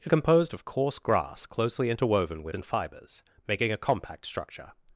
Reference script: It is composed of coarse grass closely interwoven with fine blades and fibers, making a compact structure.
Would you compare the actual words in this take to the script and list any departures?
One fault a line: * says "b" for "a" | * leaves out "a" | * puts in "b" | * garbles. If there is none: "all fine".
* leaves out "is"
* leaves out "fine blades"